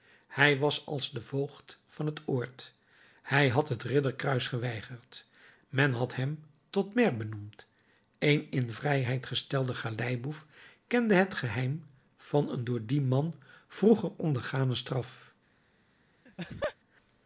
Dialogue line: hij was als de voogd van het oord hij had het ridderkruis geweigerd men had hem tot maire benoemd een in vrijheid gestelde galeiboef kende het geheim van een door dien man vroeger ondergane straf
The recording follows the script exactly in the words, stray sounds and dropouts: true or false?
false